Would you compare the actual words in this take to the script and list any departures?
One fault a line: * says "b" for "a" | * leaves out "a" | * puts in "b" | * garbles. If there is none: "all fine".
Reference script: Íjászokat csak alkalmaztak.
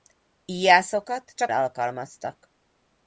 all fine